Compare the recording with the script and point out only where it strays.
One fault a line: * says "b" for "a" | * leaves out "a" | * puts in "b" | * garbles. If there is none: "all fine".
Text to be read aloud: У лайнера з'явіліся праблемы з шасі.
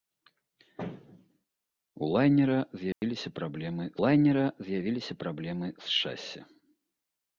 * puts in "лайнера з'явіліся праблемы"